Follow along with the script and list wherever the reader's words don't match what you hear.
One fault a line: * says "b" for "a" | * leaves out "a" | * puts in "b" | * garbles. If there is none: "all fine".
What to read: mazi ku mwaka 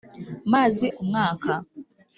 all fine